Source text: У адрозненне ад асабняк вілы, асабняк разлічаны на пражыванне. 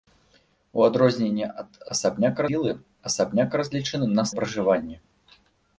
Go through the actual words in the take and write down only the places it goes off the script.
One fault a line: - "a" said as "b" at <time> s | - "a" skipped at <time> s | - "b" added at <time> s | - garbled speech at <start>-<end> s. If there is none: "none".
none